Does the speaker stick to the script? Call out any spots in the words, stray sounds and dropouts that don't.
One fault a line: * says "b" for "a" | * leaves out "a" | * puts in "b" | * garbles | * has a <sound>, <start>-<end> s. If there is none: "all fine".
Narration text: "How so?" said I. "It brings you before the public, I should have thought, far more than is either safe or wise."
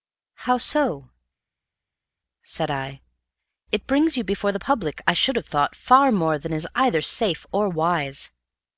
all fine